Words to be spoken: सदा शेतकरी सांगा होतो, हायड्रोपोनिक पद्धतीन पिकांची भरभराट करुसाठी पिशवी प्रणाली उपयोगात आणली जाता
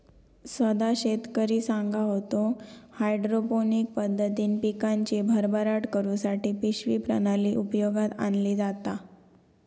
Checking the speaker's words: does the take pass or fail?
pass